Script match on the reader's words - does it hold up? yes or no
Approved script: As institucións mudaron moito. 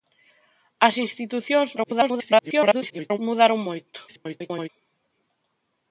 no